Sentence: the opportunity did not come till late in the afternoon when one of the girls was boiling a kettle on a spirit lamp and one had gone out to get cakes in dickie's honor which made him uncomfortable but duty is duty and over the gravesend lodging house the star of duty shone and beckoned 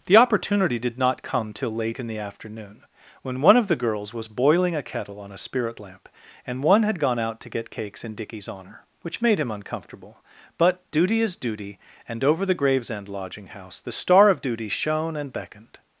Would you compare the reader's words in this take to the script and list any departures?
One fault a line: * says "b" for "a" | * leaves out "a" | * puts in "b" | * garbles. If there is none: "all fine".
all fine